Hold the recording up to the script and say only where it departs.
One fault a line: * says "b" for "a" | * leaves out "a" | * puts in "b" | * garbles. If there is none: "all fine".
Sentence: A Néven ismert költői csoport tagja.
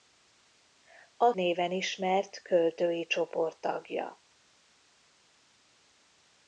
all fine